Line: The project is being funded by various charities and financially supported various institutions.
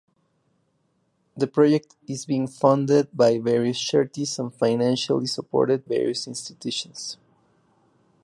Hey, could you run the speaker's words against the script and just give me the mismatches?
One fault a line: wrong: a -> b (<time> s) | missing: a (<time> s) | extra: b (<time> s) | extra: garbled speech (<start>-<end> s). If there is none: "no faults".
no faults